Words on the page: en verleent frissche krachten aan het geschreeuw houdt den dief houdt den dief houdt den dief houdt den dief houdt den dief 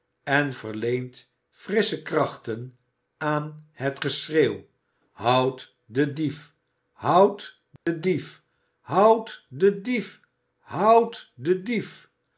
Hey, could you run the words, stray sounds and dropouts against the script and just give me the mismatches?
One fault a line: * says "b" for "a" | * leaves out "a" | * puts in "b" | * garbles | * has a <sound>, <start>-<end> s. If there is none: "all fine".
* has a dropout, 7.8-7.9 s
* leaves out "houdt den dief"